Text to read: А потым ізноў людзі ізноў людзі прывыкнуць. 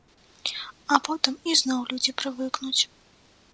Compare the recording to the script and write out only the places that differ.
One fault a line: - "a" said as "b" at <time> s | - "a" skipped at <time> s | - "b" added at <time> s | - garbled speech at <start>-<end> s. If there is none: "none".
- "ізноў людзі" skipped at 2.2 s